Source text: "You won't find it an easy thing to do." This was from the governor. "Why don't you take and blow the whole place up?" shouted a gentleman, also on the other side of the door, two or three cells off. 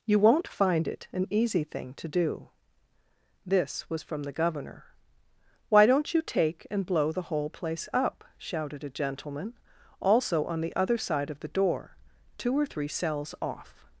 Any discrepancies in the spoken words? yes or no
no